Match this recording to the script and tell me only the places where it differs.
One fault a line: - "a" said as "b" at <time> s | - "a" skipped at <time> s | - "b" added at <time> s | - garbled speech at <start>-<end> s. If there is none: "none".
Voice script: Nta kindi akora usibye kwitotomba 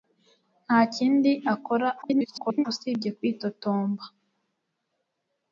- garbled speech at 2.0-2.7 s